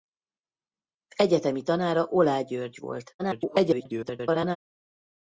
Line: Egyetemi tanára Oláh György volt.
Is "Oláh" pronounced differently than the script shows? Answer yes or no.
no